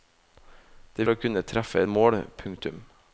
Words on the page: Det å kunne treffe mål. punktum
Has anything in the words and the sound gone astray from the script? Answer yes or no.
no